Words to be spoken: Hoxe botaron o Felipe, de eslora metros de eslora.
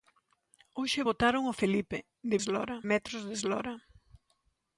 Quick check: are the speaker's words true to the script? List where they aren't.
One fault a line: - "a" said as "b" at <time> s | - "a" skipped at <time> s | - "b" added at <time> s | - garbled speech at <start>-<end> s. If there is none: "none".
none